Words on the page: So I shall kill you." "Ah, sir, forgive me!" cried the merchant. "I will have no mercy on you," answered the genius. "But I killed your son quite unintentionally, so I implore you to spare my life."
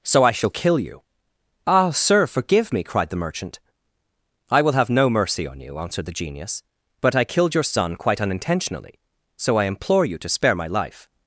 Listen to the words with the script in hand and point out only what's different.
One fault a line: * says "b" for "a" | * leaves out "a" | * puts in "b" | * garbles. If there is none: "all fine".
all fine